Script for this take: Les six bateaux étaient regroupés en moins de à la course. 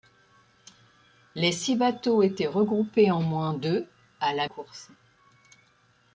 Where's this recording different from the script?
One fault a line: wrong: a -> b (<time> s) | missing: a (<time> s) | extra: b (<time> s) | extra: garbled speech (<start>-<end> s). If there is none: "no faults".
no faults